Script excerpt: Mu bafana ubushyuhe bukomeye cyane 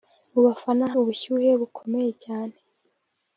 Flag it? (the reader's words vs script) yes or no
no